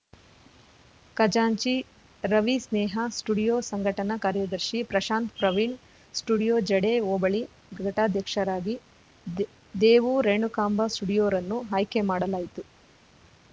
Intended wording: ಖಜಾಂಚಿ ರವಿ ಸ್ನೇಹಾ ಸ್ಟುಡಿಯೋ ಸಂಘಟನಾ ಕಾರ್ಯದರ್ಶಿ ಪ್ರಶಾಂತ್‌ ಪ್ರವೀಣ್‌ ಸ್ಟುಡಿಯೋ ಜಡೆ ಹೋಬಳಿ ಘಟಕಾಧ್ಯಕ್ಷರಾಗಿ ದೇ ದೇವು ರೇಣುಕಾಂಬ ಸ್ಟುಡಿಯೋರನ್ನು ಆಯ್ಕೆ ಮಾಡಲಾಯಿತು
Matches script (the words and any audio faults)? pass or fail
pass